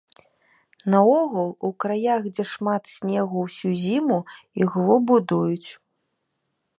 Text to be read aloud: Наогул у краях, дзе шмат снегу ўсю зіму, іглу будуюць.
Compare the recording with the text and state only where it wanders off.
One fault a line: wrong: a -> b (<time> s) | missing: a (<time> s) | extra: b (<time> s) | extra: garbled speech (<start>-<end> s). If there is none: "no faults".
no faults